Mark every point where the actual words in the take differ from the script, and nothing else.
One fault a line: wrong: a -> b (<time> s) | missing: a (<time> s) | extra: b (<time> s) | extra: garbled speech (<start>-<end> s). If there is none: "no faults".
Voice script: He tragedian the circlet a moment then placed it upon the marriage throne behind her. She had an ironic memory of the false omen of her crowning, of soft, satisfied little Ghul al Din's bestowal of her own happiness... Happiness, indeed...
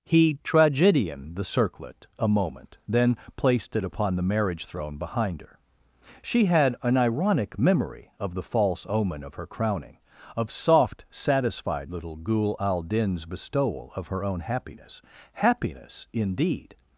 no faults